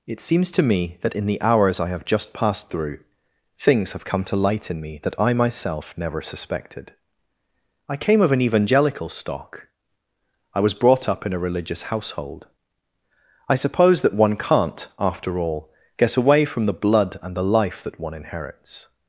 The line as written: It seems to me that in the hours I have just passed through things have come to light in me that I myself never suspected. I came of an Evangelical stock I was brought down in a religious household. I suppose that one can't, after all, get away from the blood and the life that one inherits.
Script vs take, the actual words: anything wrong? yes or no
yes